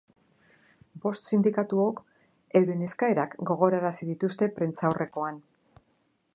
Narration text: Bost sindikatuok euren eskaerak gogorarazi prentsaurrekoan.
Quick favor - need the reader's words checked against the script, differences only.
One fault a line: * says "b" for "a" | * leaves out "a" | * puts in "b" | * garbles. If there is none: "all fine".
* puts in "dituzte"